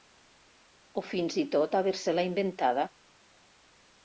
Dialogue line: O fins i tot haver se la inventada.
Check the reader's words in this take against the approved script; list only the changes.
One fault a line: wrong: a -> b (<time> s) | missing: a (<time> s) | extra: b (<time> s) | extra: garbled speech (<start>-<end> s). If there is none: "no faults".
no faults